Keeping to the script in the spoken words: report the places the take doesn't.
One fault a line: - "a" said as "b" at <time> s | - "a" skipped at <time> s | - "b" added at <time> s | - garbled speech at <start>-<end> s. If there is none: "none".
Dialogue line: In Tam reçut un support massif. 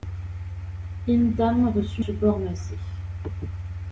- "un" skipped at 2.0 s